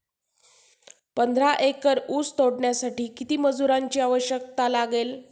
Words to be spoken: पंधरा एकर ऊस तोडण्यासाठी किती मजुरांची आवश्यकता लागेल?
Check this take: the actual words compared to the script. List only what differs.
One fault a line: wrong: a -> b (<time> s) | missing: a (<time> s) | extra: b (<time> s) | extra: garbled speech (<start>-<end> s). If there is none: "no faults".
no faults